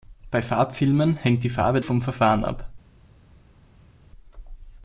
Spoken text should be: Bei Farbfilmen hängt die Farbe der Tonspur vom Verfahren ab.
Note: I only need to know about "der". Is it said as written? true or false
false